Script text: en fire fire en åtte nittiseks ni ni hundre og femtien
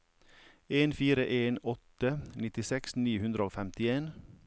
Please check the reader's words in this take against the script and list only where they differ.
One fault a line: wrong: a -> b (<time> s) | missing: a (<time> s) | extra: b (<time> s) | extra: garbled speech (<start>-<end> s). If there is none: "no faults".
missing: fire (1.2 s)
missing: ni (3.2 s)